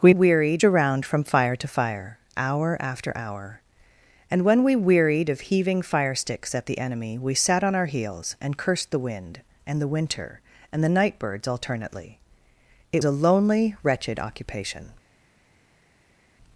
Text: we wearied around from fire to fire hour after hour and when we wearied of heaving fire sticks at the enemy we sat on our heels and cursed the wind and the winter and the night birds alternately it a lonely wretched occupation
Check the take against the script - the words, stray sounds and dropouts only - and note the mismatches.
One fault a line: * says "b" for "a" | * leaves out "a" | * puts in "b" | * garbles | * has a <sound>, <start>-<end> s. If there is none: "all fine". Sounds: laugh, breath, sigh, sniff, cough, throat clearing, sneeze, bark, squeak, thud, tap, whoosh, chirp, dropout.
all fine